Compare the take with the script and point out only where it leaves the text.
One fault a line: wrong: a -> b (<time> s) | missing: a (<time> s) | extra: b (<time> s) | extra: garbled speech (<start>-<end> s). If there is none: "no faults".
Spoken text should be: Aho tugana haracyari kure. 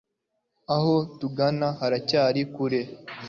no faults